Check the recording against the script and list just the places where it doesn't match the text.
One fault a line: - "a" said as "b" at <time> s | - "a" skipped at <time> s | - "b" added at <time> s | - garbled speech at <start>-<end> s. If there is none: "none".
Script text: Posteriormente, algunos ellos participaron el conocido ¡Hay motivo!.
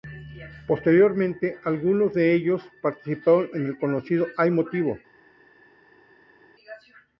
- "de" added at 2.1 s
- "en" added at 3.5 s